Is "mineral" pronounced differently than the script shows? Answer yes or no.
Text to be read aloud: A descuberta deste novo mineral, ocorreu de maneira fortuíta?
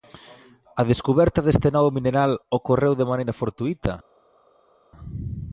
no